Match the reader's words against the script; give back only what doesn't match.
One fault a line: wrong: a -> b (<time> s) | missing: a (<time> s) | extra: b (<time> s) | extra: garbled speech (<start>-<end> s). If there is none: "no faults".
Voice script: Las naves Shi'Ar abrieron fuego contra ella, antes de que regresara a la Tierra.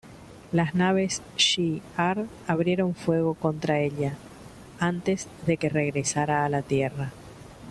no faults